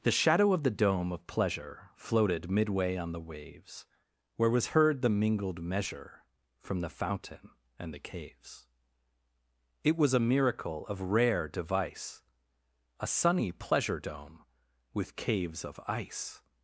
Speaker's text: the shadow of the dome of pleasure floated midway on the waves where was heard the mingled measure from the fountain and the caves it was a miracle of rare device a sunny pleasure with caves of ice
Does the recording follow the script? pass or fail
fail